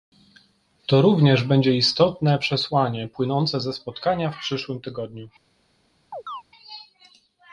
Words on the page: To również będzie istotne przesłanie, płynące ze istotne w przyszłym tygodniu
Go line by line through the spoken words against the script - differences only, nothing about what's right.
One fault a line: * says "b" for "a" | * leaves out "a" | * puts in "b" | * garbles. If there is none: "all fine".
* says "spotkania" for "istotne"